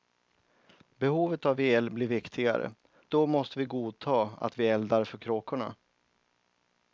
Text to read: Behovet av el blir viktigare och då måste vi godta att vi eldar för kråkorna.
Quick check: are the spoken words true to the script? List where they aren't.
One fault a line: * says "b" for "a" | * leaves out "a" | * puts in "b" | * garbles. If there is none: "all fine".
* leaves out "och"